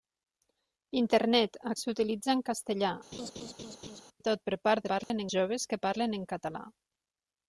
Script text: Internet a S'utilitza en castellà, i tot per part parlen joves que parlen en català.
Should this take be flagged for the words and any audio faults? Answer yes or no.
yes